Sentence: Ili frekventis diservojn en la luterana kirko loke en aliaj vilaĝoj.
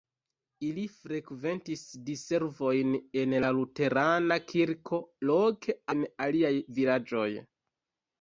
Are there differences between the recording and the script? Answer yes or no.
no